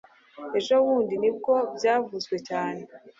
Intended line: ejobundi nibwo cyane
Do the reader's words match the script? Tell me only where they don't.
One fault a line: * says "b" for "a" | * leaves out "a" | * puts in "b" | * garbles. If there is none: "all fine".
* puts in "byavuzwe"